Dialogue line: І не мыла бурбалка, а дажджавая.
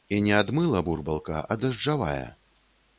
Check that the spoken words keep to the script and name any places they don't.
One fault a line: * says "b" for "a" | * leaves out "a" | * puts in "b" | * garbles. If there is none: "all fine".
* puts in "ад"